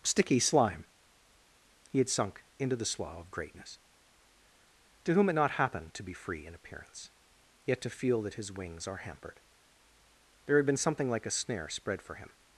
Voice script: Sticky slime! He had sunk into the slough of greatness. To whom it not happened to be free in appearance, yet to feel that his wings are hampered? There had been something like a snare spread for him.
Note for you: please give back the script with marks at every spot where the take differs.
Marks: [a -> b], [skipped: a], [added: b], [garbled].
Sticky slime! He had sunk into the slough of greatness. To whom it not happened to be free in appearance, yet to feel that his wings are hampered? There had been something like a snare spread for him.